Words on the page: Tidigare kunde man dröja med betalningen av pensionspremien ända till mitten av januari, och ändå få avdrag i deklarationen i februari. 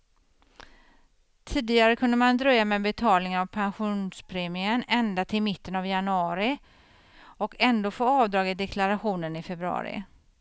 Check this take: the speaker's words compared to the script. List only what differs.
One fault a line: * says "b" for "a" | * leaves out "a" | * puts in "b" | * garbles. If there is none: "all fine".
all fine